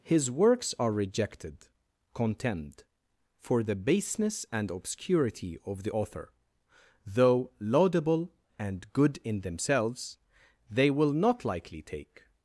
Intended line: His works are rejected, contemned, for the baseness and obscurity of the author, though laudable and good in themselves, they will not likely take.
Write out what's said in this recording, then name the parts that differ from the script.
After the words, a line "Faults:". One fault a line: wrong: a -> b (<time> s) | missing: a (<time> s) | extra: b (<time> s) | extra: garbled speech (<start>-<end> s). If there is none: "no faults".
His works are rejected, contemned, for the baseness and obscurity of the author, though laudable and good in themselves, they will not likely take.
Faults:
no faults